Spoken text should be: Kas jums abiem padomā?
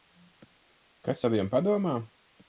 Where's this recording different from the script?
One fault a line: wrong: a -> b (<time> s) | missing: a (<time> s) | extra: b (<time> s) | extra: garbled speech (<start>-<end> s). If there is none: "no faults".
missing: jums (1.2 s)